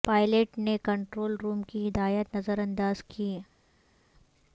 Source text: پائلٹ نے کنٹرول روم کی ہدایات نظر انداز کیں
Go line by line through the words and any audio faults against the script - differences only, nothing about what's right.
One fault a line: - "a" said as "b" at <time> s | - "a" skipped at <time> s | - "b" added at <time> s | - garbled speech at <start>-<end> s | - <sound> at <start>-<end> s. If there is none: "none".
none